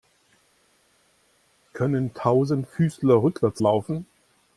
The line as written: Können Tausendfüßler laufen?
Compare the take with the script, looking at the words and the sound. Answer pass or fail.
fail